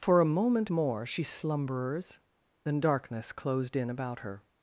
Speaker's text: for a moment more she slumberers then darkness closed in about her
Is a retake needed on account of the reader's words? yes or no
no